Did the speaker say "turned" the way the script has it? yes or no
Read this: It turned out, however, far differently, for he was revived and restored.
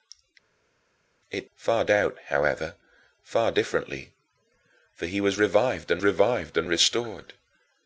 no